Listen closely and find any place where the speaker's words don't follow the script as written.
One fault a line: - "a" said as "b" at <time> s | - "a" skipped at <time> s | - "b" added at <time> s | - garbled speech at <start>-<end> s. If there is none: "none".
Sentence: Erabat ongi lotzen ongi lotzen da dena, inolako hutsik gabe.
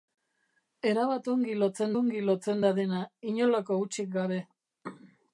none